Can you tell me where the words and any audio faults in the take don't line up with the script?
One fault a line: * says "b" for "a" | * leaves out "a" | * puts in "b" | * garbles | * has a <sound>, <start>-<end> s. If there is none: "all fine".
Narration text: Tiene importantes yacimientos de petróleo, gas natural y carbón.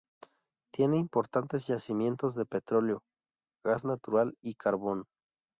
all fine